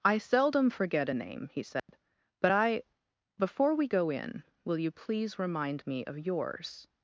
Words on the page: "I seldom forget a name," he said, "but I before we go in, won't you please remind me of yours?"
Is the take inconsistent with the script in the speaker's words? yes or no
yes